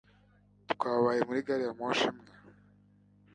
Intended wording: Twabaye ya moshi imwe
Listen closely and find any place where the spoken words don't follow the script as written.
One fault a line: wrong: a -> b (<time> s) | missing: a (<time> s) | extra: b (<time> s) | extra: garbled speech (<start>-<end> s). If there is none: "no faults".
extra: muri gari (1.3 s)